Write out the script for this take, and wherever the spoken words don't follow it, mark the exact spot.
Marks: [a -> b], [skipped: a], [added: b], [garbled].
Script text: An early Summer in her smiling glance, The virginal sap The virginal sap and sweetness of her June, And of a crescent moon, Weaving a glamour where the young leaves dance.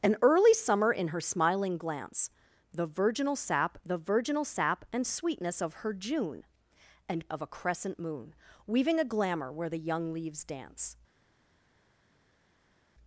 An early Summer in her smiling glance, The virginal sap The virginal sap and sweetness of her June, And of a crescent moon, Weaving a glamour where the young leaves dance.